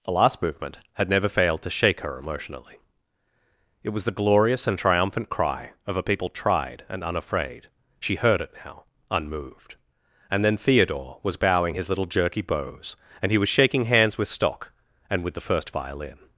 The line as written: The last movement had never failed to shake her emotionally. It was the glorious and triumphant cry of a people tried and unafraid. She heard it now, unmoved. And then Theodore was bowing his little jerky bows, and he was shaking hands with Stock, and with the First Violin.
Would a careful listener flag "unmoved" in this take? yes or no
no